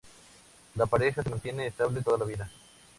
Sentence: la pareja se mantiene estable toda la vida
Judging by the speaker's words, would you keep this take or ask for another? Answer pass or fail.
pass